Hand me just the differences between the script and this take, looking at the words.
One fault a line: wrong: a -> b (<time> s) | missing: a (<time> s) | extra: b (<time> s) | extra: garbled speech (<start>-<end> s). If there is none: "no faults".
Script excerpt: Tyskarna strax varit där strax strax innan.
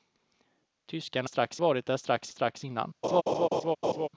no faults